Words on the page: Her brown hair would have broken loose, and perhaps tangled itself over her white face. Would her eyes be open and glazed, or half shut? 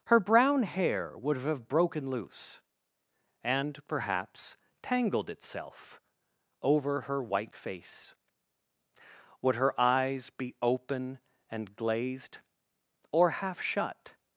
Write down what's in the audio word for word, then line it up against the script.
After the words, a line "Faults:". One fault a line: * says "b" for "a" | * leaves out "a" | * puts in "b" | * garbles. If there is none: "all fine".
Her brown hair would have broken loose, and perhaps tangled itself over her white face. Would her eyes be open and glazed, or half shut?
Faults:
all fine